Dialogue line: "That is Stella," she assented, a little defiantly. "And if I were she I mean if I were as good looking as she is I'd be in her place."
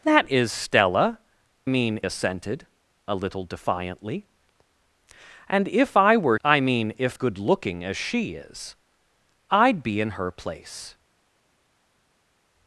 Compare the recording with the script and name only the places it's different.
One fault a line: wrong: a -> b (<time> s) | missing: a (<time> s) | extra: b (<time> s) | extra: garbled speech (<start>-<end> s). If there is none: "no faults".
wrong: she -> mean (1.7 s)
missing: she (6.4 s)
missing: I were as (7.2 s)